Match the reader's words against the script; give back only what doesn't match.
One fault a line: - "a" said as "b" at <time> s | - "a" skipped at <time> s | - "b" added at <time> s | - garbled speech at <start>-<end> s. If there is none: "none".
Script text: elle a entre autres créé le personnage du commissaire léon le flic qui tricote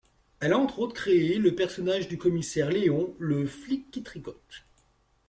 none